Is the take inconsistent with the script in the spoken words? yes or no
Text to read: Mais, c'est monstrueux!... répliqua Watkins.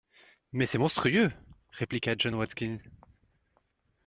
yes